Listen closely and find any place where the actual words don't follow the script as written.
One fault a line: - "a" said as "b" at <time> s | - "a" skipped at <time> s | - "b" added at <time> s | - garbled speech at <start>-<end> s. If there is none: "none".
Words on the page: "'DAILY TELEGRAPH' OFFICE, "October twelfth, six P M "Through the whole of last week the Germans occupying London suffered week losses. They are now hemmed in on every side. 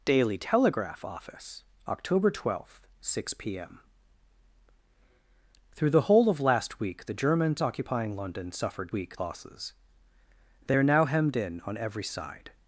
none